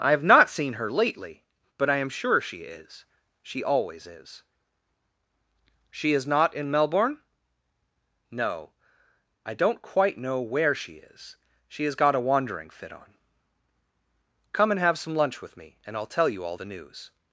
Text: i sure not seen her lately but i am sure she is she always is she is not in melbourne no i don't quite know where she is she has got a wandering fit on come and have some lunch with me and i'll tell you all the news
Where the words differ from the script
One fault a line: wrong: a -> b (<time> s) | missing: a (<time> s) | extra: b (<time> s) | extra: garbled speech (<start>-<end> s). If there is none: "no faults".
wrong: sure -> have (0.1 s)